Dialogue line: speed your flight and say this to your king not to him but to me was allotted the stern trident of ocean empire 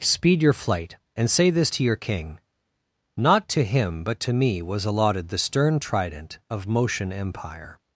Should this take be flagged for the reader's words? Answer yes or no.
yes